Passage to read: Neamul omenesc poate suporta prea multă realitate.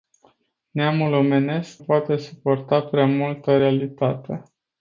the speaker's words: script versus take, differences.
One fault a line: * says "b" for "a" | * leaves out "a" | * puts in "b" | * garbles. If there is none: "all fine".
all fine